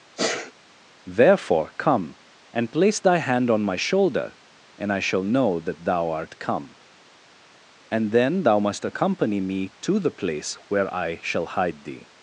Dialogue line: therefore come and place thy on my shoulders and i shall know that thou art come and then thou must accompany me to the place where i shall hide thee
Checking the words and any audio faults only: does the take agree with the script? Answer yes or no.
no